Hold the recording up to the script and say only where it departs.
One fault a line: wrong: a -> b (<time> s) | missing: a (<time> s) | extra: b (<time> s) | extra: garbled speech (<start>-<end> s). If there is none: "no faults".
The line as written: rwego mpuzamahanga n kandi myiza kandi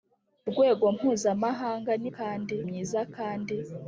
no faults